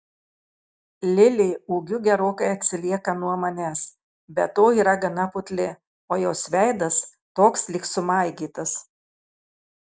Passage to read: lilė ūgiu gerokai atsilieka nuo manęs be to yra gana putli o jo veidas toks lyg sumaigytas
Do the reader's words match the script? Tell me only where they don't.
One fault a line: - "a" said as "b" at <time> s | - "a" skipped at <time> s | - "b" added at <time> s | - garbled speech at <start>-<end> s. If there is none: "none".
- "jo" said as "jos" at 6.2 s